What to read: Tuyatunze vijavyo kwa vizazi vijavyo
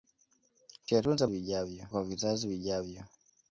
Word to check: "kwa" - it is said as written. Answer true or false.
true